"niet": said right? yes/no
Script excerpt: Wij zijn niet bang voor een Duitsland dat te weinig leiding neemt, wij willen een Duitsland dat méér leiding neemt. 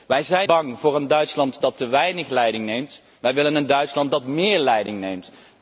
no